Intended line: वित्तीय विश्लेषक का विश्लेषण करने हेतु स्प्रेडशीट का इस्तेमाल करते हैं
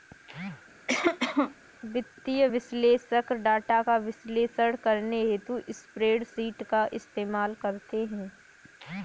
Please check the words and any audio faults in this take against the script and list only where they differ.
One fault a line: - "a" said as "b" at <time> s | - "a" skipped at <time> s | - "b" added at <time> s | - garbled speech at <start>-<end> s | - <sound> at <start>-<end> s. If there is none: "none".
- cough at 0.9-1.5 s
- "डाटा" added at 3.4 s